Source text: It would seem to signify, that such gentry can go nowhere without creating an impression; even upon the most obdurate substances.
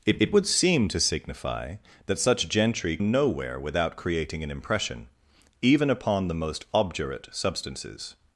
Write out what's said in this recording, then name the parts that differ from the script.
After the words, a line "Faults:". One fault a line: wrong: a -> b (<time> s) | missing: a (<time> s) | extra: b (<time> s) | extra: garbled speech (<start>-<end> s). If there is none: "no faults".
It it would seem to signify, that such gentry nowhere without creating an impression; even upon the most obdurate substances.
Faults:
extra: it (0.2 s)
missing: can go (3.0 s)